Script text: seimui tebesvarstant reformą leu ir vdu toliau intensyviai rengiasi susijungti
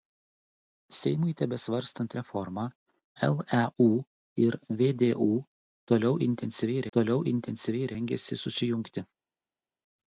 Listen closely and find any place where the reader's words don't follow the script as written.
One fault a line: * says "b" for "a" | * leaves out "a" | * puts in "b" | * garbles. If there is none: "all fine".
* puts in "toliau intensyviai"